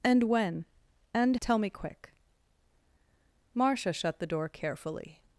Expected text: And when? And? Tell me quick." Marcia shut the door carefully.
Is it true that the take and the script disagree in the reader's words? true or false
false